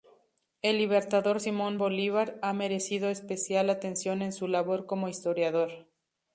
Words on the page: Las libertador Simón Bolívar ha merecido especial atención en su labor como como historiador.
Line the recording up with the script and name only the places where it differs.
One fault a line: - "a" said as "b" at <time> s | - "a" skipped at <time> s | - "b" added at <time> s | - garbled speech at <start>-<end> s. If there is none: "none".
- "Las" said as "El" at 0.6 s
- "como" skipped at 5.1 s